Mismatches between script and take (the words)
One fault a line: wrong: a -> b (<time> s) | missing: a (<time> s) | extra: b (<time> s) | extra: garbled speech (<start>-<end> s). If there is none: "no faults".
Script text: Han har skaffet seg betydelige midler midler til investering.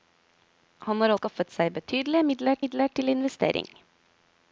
no faults